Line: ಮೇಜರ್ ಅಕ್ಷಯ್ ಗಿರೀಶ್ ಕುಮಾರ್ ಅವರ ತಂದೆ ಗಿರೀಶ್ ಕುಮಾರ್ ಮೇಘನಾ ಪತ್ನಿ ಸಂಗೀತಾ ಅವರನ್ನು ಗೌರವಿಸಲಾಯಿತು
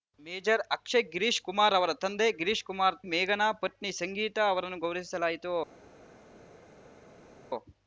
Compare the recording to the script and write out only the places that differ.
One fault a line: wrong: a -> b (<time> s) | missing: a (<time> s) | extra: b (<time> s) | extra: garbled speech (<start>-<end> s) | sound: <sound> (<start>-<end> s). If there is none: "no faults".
no faults